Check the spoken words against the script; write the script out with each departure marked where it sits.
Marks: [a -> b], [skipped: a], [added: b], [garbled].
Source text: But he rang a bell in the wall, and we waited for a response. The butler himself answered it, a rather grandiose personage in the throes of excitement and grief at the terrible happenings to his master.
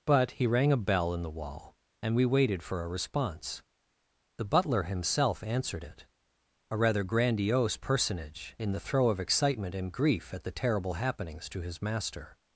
But he rang a bell in the wall, and we waited for a response. The butler himself answered it, a rather grandiose personage in the [throes -> throe] of excitement and grief at the terrible happenings to his master.